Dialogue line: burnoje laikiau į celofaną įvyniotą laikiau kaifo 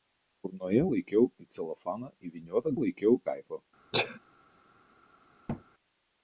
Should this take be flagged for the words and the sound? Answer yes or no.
yes